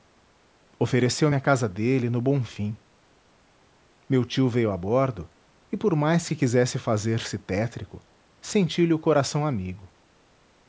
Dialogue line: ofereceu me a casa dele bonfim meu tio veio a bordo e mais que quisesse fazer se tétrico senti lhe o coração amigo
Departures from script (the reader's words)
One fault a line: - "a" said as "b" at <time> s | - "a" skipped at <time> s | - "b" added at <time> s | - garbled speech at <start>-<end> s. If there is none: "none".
- "no" added at 2.1 s
- "por" added at 5.8 s